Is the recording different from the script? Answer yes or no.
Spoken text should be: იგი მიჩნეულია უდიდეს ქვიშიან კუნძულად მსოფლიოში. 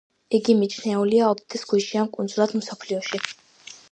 no